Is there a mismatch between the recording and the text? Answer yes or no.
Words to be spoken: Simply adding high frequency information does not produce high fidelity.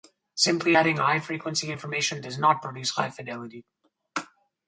no